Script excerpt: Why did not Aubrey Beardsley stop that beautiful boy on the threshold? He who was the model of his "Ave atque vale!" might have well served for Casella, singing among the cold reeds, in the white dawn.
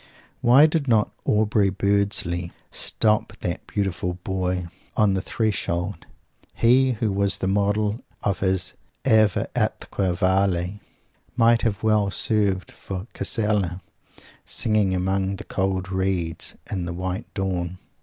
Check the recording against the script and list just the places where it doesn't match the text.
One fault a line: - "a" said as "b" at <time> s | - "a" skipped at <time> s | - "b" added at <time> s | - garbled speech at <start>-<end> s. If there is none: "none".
none